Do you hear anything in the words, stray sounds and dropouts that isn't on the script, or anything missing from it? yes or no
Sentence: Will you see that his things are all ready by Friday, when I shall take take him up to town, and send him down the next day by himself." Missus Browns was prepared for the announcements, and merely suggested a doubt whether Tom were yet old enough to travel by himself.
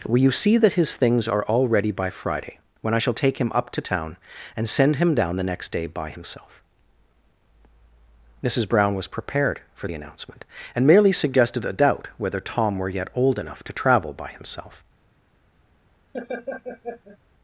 yes